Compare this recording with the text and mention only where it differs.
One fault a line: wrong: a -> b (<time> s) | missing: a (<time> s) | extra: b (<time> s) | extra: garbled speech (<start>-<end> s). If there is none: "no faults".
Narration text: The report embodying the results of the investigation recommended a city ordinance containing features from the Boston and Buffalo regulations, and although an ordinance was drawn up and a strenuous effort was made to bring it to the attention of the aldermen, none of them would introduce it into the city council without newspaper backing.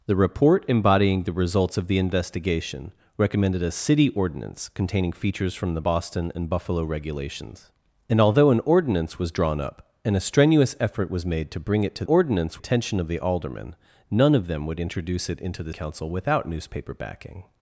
wrong: the -> ordinance (12.0 s)
missing: city (15.7 s)